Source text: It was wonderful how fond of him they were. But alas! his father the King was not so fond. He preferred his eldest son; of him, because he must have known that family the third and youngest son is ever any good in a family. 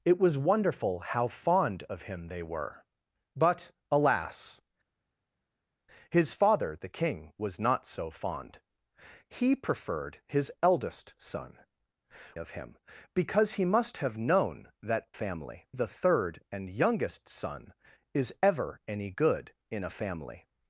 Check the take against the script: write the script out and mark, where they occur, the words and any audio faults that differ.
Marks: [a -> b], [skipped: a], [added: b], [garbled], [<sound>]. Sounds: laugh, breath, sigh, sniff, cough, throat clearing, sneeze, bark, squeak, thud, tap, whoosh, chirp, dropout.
It was wonderful how fond of him they were. But alas! his father the King was not so fond. He preferred his eldest son; of him, because he must have known that family the third and youngest son is ever any good in a family.